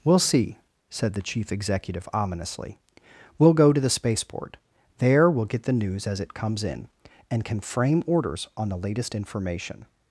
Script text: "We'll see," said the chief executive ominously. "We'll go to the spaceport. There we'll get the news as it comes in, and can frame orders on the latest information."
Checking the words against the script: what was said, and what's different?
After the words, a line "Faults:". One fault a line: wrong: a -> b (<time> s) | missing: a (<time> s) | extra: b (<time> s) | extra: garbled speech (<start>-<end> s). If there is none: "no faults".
"We'll see," said the chief executive ominously. "We'll go to the spaceport. There we'll get the news as it comes in, and can frame orders on the latest information."
Faults:
no faults